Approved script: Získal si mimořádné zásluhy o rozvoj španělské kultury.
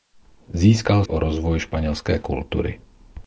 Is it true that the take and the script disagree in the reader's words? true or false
true